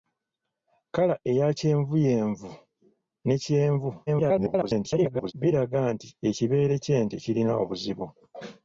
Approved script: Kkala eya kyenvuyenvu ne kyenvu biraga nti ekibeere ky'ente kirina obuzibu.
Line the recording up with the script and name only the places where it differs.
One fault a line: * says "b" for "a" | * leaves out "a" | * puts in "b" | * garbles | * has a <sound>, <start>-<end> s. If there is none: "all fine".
* garbles